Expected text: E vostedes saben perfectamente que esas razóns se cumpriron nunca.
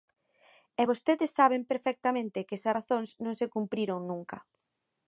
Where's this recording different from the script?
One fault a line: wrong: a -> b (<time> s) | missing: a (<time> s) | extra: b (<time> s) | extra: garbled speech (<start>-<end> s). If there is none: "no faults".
extra: non (3.2 s)